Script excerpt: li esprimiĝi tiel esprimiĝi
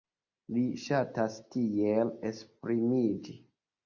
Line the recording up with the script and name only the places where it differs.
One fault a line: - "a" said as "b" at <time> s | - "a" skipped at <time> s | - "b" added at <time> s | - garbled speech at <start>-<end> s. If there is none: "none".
- "esprimiĝi" said as "ŝatas" at 0.8 s